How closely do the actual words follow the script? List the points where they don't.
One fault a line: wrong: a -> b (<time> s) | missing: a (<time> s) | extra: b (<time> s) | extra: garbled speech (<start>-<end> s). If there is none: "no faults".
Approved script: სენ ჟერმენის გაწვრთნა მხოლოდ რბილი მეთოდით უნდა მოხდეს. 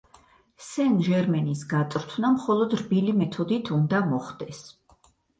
no faults